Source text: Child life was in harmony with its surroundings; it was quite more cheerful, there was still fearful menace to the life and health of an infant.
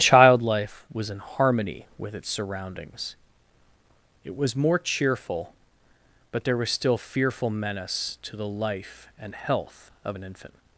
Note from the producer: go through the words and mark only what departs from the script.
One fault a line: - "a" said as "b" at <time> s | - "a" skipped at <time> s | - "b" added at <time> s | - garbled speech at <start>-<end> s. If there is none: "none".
- "quite" skipped at 4.5 s
- "but" added at 6.3 s